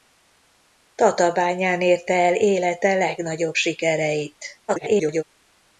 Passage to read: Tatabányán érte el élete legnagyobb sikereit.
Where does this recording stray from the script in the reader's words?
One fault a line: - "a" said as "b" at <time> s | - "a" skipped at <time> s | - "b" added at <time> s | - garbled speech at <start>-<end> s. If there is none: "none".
- garbled speech at 4.7-5.2 s